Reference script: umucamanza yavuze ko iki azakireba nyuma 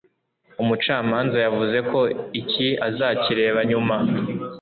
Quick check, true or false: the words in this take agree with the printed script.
true